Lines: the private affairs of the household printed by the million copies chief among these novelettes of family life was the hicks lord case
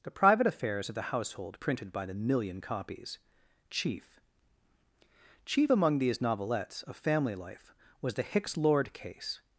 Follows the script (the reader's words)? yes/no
no